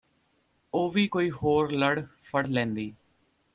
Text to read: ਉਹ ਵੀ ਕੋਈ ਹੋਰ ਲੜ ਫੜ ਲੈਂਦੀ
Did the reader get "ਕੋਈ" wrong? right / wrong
right